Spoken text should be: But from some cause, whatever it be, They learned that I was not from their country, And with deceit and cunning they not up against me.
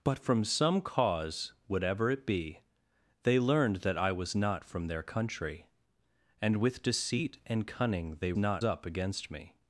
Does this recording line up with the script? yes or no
yes